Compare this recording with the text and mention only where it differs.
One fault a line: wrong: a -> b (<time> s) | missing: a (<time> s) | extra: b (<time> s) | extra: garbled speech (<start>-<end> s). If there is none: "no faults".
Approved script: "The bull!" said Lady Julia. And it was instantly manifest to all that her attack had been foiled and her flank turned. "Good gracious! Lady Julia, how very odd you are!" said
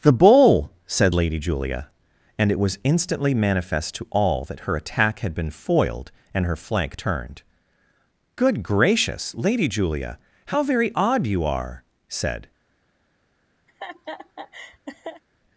no faults